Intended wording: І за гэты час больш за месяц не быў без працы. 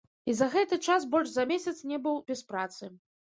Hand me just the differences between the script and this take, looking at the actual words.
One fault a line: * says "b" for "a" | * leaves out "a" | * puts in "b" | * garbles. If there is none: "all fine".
all fine